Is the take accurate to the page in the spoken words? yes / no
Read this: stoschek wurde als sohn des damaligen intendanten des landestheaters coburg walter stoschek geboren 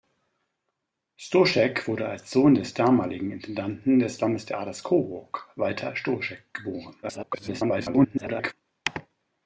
no